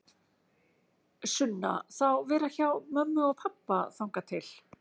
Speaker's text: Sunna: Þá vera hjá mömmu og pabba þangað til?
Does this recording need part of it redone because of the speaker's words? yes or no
no